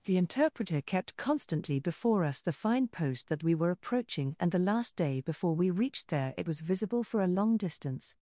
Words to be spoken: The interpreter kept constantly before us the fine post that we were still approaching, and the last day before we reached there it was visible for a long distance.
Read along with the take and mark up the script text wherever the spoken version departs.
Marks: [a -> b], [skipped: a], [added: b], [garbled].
The interpreter kept constantly before us the fine post that we were [skipped: still] approaching, and the last day before we reached there it was visible for a long distance.